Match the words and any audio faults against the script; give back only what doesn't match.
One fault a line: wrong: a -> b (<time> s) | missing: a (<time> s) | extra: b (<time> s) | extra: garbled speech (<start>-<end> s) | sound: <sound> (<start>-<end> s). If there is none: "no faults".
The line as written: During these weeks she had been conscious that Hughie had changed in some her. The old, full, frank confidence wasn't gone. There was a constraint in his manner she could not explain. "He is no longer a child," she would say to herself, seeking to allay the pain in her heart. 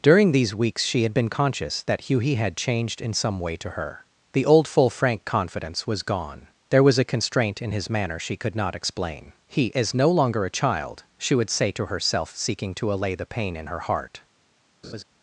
extra: way to (3.4 s)
wrong: wasn't -> was (5.9 s)
sound: laugh (14.8-15.0 s)